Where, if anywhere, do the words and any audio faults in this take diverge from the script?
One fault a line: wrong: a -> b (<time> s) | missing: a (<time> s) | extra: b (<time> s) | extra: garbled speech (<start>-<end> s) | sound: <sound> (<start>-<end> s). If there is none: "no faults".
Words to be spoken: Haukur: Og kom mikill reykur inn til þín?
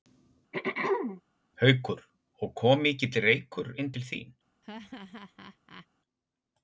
sound: throat clearing (0.5-1.2 s)
sound: laugh (4.6-5.9 s)